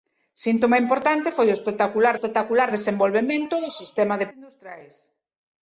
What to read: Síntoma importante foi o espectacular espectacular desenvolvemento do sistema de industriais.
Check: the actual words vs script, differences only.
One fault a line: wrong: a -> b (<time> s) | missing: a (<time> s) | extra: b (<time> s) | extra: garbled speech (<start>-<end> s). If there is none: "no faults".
no faults